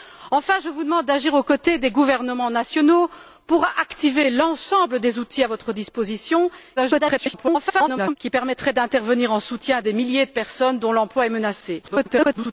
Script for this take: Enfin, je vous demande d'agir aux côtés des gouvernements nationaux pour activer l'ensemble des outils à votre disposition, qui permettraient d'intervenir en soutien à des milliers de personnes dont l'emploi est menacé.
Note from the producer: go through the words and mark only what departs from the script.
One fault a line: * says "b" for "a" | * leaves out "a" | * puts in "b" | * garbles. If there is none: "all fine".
* garbles
* garbles